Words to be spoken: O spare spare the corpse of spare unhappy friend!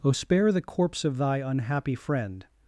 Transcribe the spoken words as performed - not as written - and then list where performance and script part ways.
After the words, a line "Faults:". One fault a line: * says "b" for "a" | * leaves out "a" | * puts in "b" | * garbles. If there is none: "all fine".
O spare the corpse of thy unhappy friend!
Faults:
* leaves out "spare"
* says "thy" for "spare"